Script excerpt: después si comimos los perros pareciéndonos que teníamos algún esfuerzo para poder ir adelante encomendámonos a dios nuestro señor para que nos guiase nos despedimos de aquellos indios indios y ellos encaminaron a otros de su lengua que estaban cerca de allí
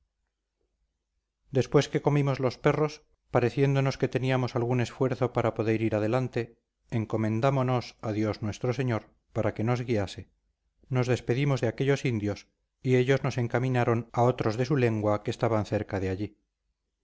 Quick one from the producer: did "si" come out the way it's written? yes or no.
no